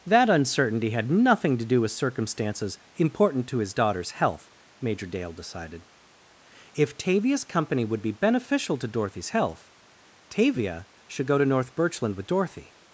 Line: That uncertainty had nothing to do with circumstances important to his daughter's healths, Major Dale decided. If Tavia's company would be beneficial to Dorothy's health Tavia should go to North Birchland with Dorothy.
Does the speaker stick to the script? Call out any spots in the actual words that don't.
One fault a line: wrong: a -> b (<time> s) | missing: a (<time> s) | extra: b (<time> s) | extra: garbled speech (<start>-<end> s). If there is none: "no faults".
wrong: healths -> health (4.1 s)